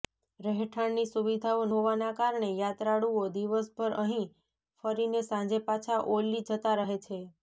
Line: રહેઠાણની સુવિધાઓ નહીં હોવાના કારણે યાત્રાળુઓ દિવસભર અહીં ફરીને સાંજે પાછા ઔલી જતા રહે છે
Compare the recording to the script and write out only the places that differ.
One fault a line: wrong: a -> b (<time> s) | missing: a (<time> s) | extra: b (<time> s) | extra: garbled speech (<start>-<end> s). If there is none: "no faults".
missing: નહીં (1.7 s)